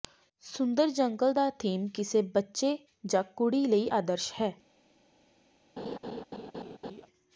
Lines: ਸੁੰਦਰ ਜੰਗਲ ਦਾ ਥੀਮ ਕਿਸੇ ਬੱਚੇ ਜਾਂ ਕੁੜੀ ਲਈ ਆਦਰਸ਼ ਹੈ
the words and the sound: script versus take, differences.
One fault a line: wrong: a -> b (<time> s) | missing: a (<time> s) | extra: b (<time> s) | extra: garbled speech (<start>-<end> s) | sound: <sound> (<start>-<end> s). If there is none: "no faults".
sound: laugh (5.8-7.1 s)